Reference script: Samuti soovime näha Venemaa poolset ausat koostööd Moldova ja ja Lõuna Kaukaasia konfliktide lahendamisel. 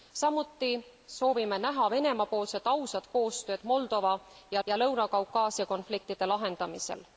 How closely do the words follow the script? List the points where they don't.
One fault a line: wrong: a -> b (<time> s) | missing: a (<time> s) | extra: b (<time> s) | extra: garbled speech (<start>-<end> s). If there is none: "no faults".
no faults